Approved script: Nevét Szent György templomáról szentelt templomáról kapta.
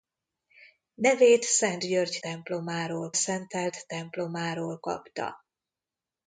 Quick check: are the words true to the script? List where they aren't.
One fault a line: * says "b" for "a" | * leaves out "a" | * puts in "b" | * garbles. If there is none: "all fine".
all fine